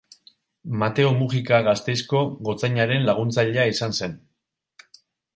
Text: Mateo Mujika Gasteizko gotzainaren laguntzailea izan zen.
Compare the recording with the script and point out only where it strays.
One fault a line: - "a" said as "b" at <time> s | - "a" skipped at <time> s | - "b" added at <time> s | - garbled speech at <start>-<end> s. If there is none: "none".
none